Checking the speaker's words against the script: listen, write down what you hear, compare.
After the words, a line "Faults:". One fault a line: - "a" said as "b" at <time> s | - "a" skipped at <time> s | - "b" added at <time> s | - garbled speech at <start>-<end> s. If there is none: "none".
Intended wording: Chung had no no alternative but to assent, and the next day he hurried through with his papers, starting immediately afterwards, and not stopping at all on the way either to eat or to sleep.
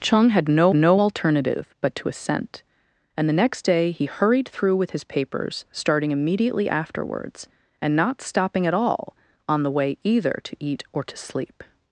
Chung had no no alternative but to assent, and the next day he hurried through with his papers, starting immediately afterwards, and not stopping at all on the way either to eat or to sleep.
Faults:
none